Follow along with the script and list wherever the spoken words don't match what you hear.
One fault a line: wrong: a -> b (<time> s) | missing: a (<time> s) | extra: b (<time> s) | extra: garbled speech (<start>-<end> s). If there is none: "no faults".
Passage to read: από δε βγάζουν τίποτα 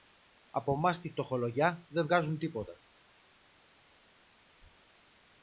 extra: μας τη φτωχολογιά (0.8 s)